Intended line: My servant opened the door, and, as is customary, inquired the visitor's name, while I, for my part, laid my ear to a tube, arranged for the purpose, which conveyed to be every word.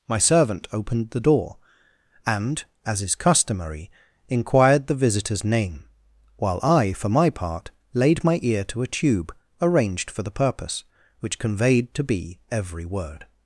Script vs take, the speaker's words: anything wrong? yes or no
no